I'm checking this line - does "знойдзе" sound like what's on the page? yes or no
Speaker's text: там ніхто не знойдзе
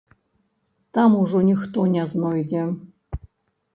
yes